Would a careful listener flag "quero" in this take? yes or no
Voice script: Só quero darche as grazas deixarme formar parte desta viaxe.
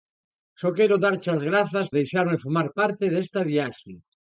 no